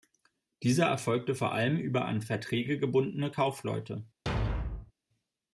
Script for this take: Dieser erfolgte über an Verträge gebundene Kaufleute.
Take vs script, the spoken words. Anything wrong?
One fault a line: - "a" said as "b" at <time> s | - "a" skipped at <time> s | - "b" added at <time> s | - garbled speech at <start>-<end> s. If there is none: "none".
- "vor allem" added at 1.3 s